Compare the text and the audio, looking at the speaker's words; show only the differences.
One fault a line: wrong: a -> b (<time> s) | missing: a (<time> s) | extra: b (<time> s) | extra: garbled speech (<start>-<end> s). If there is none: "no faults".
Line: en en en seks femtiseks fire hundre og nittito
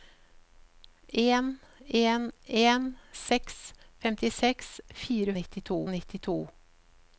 wrong: hundre -> nittito (5.4 s)